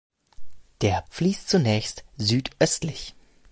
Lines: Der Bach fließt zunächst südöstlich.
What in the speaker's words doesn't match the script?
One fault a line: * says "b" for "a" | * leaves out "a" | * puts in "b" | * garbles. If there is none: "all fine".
* leaves out "Bach"